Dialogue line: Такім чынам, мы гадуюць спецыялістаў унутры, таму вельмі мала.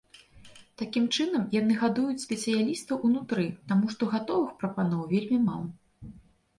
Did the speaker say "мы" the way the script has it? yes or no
no